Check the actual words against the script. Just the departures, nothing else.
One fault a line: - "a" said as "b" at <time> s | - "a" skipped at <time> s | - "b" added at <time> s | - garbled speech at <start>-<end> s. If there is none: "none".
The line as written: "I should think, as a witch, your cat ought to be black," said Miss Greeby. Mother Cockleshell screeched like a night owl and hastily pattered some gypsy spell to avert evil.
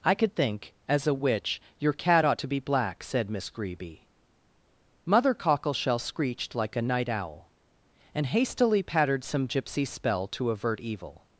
- "should" said as "could" at 0.1 s